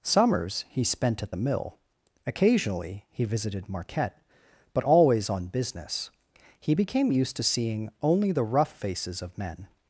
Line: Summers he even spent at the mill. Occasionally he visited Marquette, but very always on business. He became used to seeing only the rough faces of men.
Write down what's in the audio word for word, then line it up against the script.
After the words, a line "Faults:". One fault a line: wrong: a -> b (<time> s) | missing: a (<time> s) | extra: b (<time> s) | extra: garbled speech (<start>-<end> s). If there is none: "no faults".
Summers he spent at the mill. Occasionally he visited Marquette, but always on business. He became used to seeing only the rough faces of men.
Faults:
missing: even (0.8 s)
missing: very (4.8 s)